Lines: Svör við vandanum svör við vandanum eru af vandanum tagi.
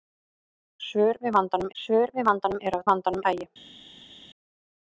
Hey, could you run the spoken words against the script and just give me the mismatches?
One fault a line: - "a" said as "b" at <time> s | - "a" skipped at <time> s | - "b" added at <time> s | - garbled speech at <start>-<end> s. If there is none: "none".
none